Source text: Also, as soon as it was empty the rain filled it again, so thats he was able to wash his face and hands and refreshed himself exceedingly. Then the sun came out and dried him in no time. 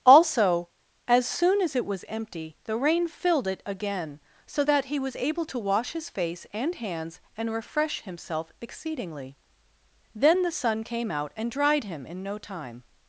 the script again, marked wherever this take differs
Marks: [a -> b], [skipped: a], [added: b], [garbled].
Also, as soon as it was empty the rain filled it again, so [thats -> that] he was able to wash his face and hands and [refreshed -> refresh] himself exceedingly. Then the sun came out and dried him in no time.